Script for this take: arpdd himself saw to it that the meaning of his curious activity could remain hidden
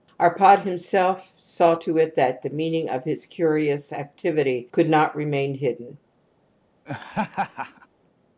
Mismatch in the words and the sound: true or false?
true